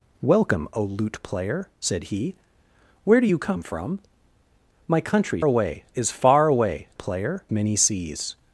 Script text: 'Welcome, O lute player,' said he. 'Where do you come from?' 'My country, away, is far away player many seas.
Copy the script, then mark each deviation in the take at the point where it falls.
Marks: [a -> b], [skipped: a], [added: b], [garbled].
'Welcome, O lute player,' said he. 'Where do you come from?' 'My country, away, is far away player many seas.